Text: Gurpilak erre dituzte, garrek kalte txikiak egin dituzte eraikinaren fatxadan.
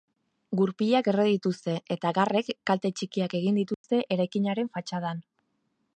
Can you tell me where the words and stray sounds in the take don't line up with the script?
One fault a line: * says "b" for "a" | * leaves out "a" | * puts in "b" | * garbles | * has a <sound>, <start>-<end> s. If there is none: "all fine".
* puts in "eta"
* has a dropout, 3.7-3.8 s